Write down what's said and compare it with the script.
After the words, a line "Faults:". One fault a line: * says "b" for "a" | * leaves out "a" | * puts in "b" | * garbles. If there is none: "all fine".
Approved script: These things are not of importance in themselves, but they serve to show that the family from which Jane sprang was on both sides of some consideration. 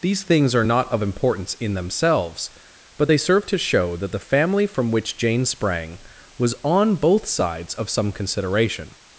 These things are not of importance in themselves, but they serve to show that the family from which Jane sprang was on both sides of some consideration.
Faults:
all fine